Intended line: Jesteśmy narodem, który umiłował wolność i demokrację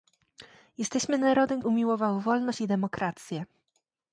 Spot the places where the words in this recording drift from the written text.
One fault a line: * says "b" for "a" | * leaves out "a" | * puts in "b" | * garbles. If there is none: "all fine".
* leaves out "który"